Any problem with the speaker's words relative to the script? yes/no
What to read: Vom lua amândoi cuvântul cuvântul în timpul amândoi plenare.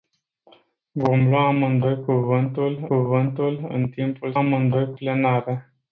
no